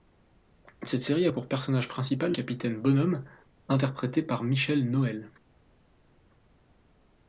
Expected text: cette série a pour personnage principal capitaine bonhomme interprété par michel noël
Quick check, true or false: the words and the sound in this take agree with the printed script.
true